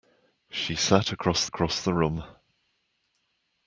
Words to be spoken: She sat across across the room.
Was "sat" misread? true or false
false